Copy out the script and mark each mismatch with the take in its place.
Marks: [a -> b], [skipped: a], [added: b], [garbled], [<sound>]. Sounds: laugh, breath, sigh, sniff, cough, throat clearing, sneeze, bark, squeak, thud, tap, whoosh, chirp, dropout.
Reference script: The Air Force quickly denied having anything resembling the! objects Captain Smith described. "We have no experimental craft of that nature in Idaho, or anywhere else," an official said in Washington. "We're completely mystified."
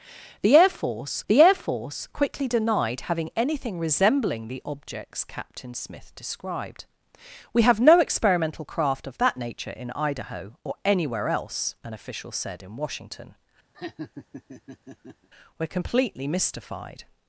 The Air Force [added: the Air Force] quickly denied having anything resembling the! objects Captain Smith described. "We have no experimental craft of that nature in Idaho, or anywhere else," an official said in Washington. [laugh] "We're completely mystified."